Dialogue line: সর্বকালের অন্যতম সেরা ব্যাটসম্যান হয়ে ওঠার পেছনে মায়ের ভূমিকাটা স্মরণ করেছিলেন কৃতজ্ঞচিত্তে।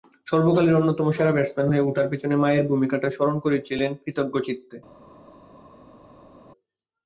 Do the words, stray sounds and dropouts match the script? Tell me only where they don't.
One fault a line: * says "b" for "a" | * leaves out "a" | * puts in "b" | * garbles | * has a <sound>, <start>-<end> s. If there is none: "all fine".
all fine